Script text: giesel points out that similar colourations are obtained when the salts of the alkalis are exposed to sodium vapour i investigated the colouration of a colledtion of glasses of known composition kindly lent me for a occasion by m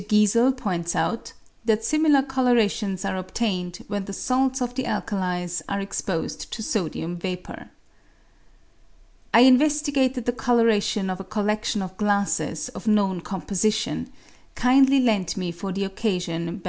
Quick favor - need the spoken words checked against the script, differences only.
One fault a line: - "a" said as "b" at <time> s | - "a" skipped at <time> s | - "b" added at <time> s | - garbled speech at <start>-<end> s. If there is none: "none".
- "a" said as "the" at 15.7 s